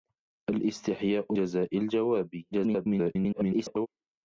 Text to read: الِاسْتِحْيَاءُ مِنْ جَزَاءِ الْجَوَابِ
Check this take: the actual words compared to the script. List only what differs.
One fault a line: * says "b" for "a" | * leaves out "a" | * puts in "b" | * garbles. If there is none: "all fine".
* leaves out "مِنْ"
* garbles